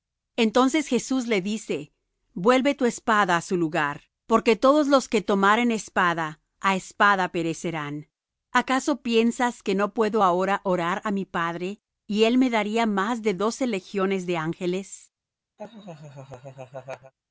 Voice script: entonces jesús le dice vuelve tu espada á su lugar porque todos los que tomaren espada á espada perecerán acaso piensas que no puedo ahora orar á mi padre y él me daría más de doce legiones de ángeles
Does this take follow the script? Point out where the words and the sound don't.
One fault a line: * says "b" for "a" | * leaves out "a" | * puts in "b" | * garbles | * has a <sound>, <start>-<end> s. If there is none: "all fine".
* has a laugh, 15.6-17.1 s